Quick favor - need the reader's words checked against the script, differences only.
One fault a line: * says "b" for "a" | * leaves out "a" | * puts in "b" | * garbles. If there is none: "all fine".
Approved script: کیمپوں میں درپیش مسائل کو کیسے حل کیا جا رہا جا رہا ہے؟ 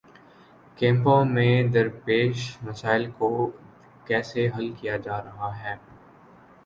* leaves out "جا رہا"